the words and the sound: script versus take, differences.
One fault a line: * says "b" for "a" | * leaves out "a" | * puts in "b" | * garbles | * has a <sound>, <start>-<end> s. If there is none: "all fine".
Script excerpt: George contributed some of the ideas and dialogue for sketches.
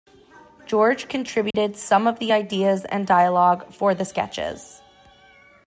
* has a dropout, 1.5-1.5 s
* puts in "the"